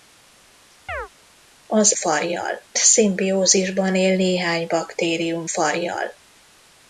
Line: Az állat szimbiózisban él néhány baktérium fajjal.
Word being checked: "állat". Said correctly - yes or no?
no